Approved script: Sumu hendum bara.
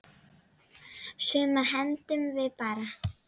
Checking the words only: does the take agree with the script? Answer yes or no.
no